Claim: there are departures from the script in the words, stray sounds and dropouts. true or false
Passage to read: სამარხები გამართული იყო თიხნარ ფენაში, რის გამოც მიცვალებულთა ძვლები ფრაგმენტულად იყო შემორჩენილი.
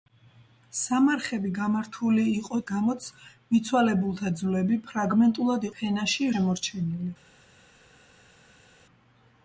true